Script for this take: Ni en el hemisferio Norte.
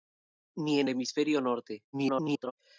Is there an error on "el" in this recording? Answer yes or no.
yes